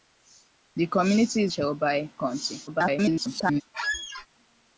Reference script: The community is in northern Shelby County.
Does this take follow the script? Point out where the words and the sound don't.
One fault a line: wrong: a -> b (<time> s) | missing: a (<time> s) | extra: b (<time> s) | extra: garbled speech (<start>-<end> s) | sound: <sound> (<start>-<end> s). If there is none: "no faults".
missing: in northern (1.5 s)
extra: garbled speech (2.7-3.6 s)
sound: squeak (3.7-4.3 s)